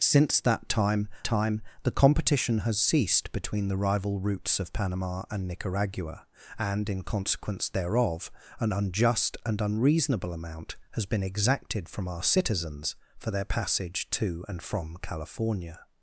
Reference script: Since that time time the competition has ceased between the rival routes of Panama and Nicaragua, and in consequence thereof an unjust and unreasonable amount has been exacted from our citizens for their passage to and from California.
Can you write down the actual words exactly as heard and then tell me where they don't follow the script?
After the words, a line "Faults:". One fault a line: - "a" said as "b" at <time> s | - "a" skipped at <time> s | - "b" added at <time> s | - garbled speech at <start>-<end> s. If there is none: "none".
Since that time time the competition has ceased between the rival routes of Panama and Nicaragua, and in consequence thereof an unjust and unreasonable amount has been exacted from our citizens for their passage to and from California.
Faults:
none